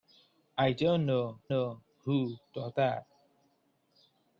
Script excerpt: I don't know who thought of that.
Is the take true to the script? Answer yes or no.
no